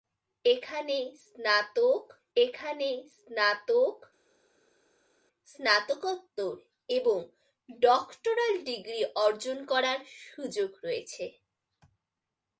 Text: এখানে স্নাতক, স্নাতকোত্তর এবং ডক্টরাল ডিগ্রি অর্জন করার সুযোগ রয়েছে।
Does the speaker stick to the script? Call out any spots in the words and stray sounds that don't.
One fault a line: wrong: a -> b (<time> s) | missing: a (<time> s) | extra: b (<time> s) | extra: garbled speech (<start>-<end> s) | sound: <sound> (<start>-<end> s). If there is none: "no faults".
extra: এখানে স্নাতক (2.4 s)